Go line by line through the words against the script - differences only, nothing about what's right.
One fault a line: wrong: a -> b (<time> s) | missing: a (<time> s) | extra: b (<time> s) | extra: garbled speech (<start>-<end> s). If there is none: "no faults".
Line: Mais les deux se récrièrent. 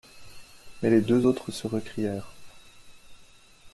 extra: autres (1.2 s)